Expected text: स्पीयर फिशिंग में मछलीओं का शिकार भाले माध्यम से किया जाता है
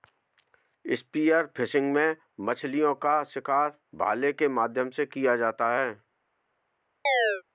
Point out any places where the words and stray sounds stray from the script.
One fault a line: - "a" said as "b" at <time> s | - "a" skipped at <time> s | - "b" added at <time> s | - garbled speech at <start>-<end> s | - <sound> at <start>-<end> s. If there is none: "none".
- "के" added at 4.3 s
- chirp at 7.1-7.4 s